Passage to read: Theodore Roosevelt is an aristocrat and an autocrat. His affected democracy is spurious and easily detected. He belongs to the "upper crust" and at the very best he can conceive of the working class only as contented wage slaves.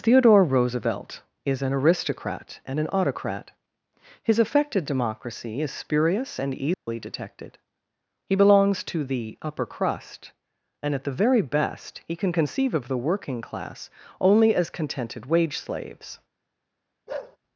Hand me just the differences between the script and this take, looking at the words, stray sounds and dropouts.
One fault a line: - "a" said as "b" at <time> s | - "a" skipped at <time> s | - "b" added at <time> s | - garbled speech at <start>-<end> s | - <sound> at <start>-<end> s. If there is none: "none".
- dropout at 6.7-6.9 s
- bark at 17.1-17.4 s